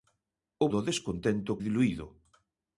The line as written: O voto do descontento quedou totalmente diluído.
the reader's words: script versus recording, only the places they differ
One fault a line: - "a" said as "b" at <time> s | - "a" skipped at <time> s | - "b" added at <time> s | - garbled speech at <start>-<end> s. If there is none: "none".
- "voto" skipped at 0.7 s
- "quedou totalmente" skipped at 1.6 s